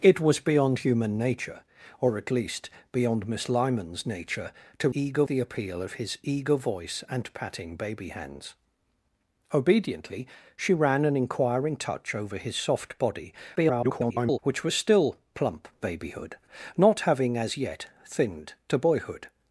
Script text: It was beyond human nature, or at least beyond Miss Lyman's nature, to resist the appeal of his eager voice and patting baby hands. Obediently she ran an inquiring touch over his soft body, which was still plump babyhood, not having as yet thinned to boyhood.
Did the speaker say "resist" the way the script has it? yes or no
no